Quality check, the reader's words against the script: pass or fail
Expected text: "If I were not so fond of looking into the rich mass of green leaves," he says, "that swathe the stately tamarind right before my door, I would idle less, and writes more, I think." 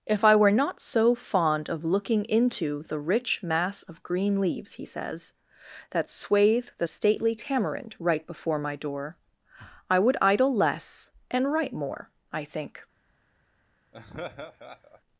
fail